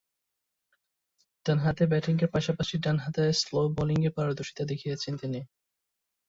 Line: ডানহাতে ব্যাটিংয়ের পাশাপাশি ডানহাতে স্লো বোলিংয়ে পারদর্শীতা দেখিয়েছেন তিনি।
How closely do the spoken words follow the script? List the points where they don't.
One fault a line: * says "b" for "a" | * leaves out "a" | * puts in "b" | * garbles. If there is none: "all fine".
all fine